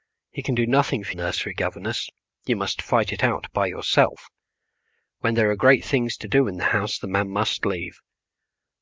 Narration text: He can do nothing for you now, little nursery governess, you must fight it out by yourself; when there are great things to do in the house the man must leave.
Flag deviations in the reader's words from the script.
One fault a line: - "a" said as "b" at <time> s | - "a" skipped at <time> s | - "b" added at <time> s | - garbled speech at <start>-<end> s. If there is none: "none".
- "you now little" skipped at 1.1 s